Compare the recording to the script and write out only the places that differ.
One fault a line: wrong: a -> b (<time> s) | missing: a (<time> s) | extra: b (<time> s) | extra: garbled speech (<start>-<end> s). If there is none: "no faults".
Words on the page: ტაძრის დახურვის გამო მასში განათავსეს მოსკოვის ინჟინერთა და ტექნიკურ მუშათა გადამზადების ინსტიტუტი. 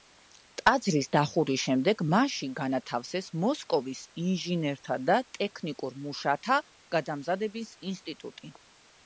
wrong: გამო -> შემდეგ (1.6 s)